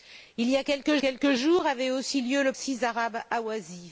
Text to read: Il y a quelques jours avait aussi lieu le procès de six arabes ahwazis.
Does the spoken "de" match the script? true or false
false